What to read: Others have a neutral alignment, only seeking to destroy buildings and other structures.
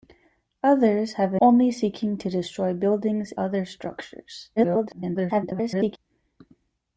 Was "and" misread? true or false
true